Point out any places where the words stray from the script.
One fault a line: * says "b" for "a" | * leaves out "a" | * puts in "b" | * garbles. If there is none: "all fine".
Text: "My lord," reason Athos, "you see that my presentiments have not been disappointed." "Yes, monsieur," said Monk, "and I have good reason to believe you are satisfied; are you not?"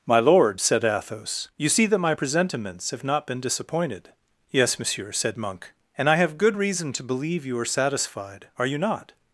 * says "said" for "reason"